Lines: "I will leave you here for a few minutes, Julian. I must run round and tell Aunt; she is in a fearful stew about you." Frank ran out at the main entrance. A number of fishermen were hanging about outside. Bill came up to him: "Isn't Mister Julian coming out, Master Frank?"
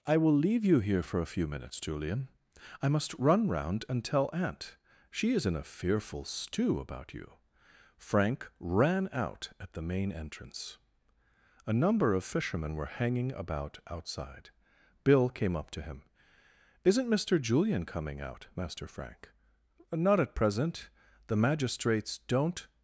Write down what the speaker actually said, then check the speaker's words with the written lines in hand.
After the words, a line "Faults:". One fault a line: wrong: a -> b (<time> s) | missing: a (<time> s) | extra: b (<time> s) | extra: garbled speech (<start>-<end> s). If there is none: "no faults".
"I will leave you here for a few minutes, Julian. I must run round and tell Aunt; she is in a fearful stew about you." Frank ran out at the main entrance. A number of fishermen were hanging about outside. Bill came up to him: "Isn't Mister Julian coming out, Master Frank?" "Not at present. The magistrates don't
Faults:
extra: Not at present The magistrates don't (19.9 s)